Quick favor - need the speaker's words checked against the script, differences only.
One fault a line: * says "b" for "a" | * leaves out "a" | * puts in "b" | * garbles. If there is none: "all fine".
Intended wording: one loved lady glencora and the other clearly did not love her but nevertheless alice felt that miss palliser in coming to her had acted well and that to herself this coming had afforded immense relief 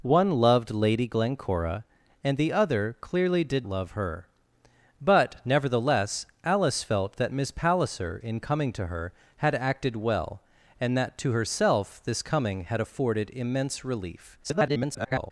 * leaves out "not"
* garbles